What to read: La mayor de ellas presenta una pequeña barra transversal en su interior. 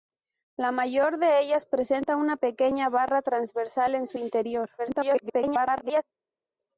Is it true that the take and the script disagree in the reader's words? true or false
true